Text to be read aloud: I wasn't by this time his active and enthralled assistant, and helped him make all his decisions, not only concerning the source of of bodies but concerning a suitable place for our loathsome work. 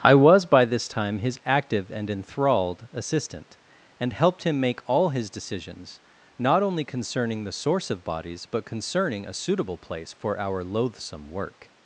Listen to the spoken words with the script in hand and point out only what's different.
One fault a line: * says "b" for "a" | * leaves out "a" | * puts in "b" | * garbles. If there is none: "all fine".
* says "was" for "wasn't"
* leaves out "of"